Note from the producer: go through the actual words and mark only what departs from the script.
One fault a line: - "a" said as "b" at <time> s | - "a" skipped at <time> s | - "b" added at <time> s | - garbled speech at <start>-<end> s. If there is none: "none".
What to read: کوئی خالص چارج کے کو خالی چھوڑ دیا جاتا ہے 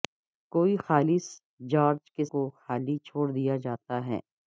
none